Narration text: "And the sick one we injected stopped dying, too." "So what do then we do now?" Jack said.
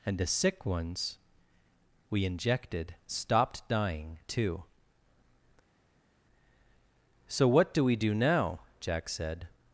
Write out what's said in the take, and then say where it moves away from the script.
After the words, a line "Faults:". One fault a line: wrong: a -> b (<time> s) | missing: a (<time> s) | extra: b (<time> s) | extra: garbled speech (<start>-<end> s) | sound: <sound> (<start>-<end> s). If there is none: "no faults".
"And the sick ones we injected stopped dying, too." "So what do we do now?" Jack said.
Faults:
wrong: one -> ones (0.7 s)
missing: then (7.8 s)